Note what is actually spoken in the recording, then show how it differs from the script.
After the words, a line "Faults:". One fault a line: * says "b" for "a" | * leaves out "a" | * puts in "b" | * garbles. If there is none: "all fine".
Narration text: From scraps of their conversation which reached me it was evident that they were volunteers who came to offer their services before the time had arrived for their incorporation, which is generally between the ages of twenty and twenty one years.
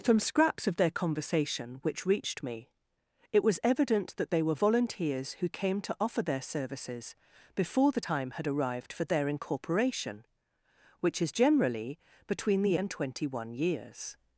From scraps of their conversation which reached me it was evident that they were volunteers who came to offer their services before the time had arrived for their incorporation, which is generally between the and twenty one years.
Faults:
* leaves out "ages of twenty"